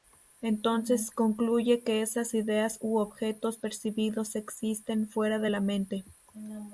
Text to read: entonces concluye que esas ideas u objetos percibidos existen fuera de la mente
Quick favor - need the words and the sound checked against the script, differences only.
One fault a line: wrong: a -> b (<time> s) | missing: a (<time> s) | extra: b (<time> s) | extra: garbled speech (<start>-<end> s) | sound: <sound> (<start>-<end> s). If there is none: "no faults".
no faults